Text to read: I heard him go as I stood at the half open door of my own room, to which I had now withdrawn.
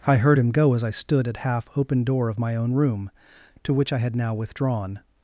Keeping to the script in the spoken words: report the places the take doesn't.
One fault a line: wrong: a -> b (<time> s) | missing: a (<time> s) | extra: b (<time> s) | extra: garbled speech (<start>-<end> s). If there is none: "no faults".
missing: the (1.4 s)